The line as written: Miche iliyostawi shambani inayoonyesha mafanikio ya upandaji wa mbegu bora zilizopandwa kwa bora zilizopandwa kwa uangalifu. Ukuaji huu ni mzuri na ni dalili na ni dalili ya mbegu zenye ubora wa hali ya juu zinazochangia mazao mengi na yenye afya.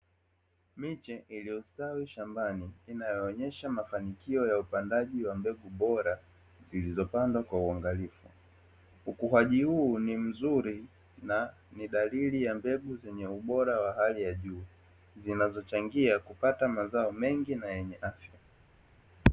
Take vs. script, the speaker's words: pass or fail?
fail